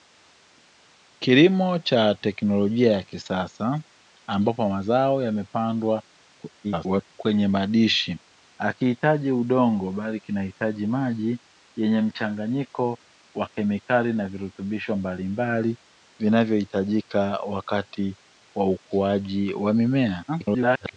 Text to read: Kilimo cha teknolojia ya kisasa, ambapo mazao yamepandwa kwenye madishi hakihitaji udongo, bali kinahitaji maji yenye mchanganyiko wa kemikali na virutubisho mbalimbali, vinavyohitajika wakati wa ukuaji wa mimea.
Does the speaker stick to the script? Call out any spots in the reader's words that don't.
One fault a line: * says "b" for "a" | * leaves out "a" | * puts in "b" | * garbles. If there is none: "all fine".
* garbles
* garbles